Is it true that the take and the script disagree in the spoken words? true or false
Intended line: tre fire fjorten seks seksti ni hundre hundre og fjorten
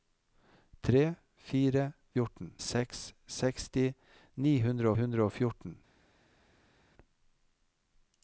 false